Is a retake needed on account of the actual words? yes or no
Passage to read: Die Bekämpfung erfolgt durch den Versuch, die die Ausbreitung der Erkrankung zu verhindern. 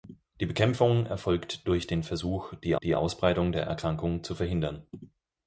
no